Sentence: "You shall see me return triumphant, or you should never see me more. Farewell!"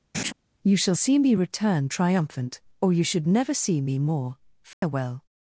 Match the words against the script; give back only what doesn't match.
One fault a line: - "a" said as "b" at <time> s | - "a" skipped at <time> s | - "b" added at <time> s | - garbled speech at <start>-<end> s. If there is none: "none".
none